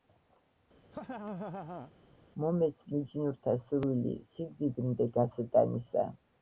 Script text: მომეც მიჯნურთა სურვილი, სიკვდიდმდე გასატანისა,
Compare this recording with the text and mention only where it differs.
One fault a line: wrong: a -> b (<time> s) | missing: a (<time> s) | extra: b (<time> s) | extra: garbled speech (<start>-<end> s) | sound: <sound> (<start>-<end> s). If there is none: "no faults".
sound: laugh (0.9-1.9 s)